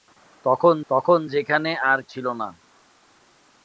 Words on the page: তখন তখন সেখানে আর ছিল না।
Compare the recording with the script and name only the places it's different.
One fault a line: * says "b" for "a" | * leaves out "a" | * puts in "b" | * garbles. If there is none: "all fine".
all fine